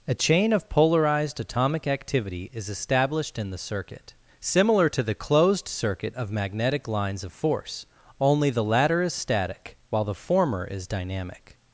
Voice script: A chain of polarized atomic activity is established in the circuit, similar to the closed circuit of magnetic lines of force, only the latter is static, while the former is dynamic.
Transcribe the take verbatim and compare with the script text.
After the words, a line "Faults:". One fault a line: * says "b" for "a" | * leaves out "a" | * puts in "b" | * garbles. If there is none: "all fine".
A chain of polarized atomic activity is established in the circuit, similar to the closed circuit of magnetic lines of force, only the latter is static, while the former is dynamic.
Faults:
all fine